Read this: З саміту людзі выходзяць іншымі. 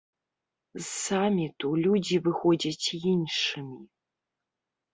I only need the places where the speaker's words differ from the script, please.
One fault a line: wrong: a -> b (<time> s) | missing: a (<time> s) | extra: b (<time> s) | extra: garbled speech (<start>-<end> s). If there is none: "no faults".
no faults